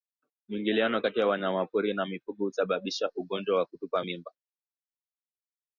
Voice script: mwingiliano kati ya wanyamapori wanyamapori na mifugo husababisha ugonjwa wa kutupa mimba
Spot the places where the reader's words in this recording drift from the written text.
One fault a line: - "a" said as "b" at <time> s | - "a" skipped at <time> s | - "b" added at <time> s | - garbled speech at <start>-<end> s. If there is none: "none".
- "wanyamapori" skipped at 1.9 s